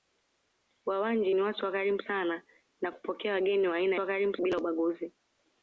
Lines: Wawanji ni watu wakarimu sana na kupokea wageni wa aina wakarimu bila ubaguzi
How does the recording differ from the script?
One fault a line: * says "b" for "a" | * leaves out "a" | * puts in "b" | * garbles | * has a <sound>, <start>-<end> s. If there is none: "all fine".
all fine